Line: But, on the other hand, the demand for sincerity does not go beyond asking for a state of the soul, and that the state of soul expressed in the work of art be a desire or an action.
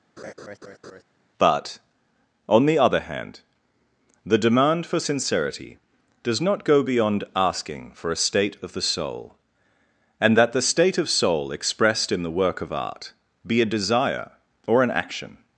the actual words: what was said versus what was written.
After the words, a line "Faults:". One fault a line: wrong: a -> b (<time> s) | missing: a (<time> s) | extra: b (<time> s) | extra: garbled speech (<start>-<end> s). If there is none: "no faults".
But, on the other hand, the demand for sincerity does not go beyond asking for a state of the soul, and that the state of soul expressed in the work of art be a desire or an action.
Faults:
no faults